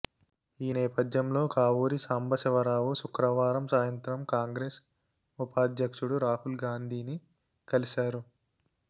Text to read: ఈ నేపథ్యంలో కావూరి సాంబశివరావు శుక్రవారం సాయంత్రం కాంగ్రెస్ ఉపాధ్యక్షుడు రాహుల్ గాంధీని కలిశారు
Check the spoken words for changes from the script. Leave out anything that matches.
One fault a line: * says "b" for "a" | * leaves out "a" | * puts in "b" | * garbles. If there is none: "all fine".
all fine